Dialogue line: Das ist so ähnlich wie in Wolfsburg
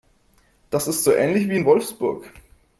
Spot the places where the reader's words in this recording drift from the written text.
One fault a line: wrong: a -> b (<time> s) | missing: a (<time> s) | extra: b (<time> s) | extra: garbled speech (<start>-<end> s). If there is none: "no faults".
no faults